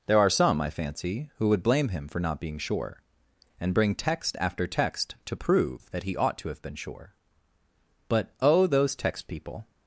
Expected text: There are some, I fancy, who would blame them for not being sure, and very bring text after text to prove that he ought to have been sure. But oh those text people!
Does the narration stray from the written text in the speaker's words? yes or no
yes